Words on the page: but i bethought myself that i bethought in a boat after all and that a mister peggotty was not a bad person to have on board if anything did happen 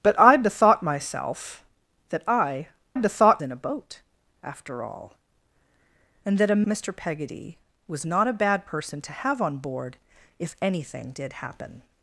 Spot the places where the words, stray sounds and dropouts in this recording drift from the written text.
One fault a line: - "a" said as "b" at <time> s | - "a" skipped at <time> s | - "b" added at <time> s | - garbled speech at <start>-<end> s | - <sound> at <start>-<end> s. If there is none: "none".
none